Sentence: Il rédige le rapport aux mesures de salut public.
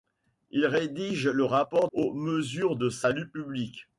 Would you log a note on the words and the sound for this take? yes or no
no